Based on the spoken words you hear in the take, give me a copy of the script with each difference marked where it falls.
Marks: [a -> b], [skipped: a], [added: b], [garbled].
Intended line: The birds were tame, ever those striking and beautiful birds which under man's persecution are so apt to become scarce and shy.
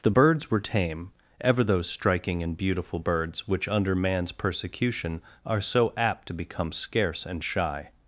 The birds were tame, ever those striking and beautiful birds which under man's persecution are so apt to become scarce and shy.